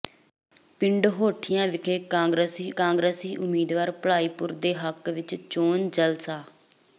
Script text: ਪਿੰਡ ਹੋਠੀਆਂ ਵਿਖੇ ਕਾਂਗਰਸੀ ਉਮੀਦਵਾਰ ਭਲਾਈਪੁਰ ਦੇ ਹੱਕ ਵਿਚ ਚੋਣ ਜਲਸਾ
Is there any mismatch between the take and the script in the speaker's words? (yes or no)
yes